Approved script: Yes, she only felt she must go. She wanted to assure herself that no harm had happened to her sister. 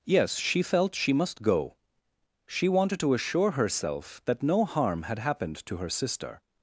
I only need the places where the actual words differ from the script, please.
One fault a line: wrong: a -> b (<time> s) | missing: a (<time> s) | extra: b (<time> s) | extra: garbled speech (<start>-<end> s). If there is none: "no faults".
missing: only (0.6 s)